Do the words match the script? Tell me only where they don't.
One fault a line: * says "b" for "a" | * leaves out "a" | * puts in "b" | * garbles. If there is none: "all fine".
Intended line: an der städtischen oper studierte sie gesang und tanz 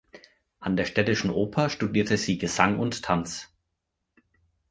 all fine